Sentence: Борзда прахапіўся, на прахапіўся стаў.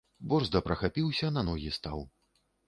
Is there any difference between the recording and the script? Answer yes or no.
yes